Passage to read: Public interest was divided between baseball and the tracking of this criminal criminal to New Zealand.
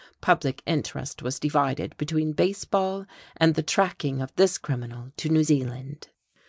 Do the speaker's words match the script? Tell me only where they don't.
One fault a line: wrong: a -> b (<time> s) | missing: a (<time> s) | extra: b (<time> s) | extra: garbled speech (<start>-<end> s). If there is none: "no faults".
missing: criminal (5.1 s)